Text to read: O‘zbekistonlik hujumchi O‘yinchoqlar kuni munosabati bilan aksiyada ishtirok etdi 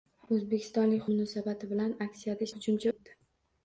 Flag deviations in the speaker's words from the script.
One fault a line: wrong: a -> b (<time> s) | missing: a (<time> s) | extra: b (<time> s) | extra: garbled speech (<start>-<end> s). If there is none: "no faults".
missing: hujumchi O‘yinchoqlar kuni (1.0 s)
wrong: ishtirok -> hujumchi (2.5 s)